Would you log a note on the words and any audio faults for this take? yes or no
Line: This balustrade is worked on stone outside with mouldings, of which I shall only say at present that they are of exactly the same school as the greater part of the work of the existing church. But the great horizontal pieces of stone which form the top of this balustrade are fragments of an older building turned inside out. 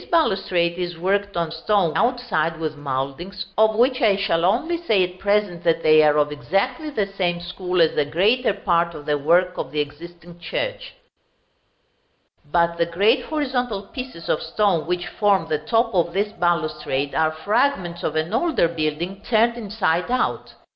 no